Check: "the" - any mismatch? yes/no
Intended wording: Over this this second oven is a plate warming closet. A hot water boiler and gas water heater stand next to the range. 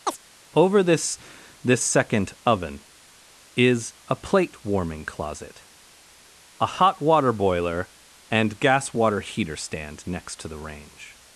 no